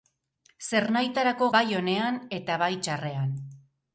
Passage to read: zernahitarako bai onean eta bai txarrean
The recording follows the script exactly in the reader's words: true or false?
true